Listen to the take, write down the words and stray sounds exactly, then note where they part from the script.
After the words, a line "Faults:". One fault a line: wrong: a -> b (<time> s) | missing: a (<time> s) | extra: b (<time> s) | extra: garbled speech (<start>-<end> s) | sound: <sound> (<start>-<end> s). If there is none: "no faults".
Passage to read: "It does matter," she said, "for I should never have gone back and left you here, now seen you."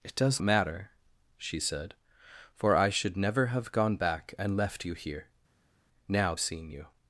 "It does matter," she said, "for I should never have gone back and left you here, now seen you."
Faults:
no faults